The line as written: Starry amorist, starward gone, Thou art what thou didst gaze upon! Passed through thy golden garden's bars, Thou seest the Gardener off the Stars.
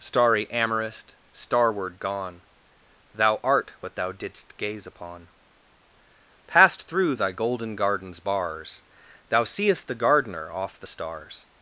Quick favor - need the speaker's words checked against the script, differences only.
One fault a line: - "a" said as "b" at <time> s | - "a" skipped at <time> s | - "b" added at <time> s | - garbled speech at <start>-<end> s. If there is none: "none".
none